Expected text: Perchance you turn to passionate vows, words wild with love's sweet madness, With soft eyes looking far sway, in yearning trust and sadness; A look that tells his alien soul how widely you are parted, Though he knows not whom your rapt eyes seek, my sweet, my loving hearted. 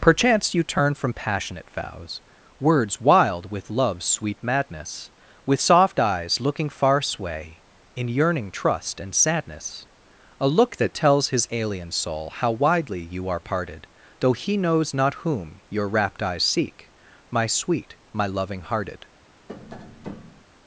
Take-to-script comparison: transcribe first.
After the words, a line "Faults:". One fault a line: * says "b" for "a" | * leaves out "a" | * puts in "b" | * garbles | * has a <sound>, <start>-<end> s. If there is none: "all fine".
Perchance you turn from passionate vows, words wild with love's sweet madness, With soft eyes looking far sway, in yearning trust and sadness; A look that tells his alien soul how widely you are parted, Though he knows not whom your rapt eyes seek, my sweet, my loving hearted.
Faults:
* says "from" for "to"
* has a tap, 19.5-20.4 s